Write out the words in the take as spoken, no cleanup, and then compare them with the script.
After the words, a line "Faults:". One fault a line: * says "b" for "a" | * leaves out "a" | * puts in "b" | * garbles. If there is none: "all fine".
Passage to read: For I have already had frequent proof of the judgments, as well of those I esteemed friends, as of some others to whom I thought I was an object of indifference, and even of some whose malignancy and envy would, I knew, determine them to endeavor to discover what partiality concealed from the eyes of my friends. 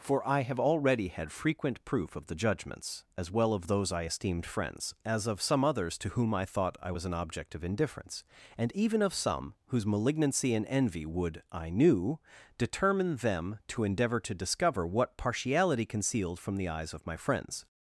For I have already had frequent proof of the judgments, as well of those I esteemed friends, as of some others to whom I thought I was an object of indifference, and even of some whose malignancy and envy would, I knew, determine them to endeavor to discover what partiality concealed from the eyes of my friends.
Faults:
all fine